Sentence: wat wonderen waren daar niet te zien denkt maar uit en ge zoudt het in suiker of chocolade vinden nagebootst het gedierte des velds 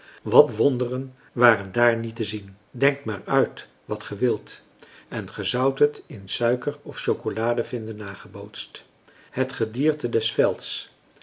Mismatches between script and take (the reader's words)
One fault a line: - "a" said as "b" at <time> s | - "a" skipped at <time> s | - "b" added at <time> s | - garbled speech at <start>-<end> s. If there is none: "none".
- "wat ge wilt" added at 3.9 s